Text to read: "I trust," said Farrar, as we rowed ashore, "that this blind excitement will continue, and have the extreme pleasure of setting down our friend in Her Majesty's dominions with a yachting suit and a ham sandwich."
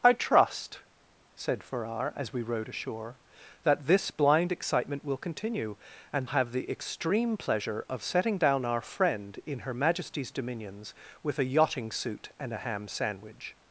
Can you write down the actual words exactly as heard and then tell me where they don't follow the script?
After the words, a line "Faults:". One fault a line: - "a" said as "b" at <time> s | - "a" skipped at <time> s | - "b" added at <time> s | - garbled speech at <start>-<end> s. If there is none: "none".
"I trust," said Farrar, as we rowed ashore, "that this blind excitement will continue, and have the extreme pleasure of setting down our friend in Her Majesty's dominions with a yachting suit and a ham sandwich."
Faults:
none